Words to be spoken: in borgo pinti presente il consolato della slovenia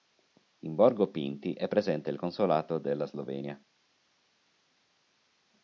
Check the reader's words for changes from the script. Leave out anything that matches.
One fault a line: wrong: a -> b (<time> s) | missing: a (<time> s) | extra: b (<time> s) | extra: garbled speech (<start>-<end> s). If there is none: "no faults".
extra: è (1.5 s)